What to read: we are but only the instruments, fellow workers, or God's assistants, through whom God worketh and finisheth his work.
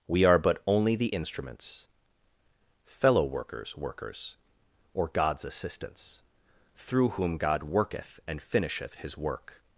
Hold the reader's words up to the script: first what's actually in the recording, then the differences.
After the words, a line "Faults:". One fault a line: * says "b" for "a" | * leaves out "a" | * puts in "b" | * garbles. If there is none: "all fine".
we are but only the instruments, fellow workers workers, or God's assistants, through whom God worketh and finisheth his work.
Faults:
* puts in "workers"